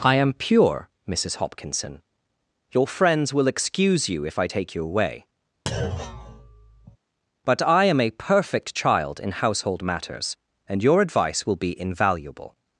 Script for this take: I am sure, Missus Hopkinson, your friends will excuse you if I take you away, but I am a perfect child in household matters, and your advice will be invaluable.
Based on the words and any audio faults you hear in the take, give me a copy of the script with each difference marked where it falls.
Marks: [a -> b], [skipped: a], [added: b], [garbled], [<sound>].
I am [sure, -> pure] Missus Hopkinson, your friends will excuse you if I take you away, [thud] but I am a perfect child in household matters, and your advice will be invaluable.